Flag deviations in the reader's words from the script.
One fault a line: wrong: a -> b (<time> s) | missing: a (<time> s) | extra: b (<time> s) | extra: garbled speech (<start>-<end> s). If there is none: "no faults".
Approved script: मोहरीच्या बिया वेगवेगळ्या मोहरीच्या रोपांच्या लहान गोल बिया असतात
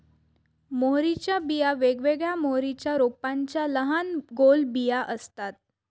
no faults